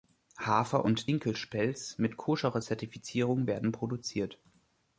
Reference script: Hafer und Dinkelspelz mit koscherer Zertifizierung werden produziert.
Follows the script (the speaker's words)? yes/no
yes